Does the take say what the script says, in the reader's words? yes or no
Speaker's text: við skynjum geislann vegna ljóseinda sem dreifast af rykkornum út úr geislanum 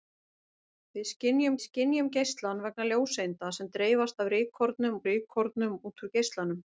no